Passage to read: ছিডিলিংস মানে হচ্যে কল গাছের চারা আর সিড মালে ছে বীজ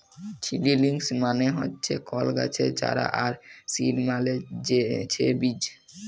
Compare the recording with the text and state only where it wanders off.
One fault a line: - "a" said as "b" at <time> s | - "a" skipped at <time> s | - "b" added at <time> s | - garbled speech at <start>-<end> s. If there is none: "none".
none